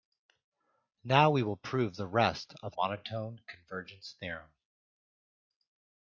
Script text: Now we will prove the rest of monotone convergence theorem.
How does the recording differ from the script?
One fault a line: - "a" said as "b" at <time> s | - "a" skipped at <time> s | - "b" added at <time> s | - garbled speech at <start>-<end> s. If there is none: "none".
none